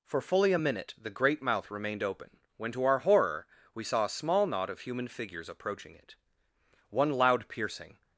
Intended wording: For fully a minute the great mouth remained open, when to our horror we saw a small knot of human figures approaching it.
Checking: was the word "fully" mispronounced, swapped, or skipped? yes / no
no